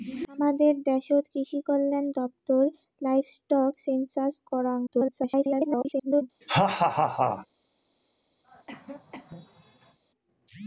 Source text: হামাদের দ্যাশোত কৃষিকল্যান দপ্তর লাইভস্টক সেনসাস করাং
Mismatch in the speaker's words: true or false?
true